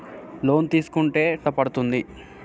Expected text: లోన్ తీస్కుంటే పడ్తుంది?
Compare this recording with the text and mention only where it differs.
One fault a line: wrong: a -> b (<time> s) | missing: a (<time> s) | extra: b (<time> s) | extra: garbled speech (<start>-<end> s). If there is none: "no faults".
no faults